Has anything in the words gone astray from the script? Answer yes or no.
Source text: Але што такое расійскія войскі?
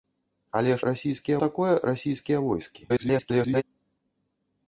yes